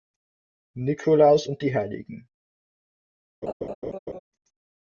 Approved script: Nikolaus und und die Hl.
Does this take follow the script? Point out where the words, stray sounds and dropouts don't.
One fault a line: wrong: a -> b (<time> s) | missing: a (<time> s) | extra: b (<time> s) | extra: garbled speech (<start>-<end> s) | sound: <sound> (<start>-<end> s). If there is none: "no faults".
missing: und (1.6 s)
sound: laugh (3.4-4.2 s)